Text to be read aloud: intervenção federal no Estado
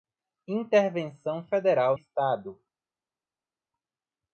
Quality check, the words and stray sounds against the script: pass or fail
fail